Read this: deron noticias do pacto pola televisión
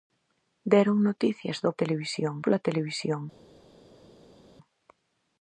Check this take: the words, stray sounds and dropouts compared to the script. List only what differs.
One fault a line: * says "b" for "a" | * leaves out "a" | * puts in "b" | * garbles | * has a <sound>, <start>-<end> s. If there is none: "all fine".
* says "televisión" for "pacto"